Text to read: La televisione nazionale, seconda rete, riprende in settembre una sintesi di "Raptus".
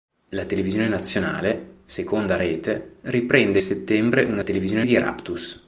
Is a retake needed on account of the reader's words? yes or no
yes